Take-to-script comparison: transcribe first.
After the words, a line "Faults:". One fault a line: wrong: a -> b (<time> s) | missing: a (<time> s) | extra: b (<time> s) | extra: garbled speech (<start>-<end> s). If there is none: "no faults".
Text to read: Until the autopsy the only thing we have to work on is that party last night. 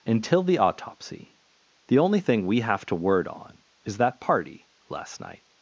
Until the autopsy the only thing we have to word on is that party last night.
Faults:
wrong: work -> word (2.9 s)